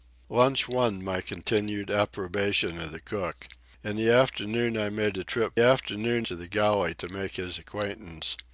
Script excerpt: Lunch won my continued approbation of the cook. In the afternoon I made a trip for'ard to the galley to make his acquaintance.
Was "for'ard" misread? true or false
true